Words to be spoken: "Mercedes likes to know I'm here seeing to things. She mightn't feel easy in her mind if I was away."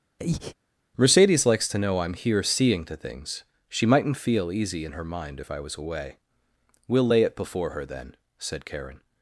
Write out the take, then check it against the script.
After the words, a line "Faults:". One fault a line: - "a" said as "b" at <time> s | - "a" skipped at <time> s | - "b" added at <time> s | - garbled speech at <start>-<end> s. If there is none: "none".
"Mercedes likes to know I'm here seeing to things. She mightn't feel easy in her mind if I was away." "We'll lay it before her, then," said Karen
Faults:
- "We'll lay it before her then said Karen" added at 6.9 s